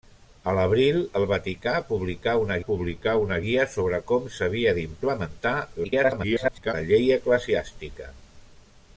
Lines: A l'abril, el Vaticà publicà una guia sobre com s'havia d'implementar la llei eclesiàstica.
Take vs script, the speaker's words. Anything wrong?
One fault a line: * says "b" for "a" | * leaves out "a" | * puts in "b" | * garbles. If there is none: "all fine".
* puts in "publicà una"
* garbles